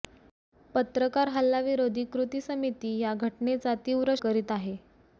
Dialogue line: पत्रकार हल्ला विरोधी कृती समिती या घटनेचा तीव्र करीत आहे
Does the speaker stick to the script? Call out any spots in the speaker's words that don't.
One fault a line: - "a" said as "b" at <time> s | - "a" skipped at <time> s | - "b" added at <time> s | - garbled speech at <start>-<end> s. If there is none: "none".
none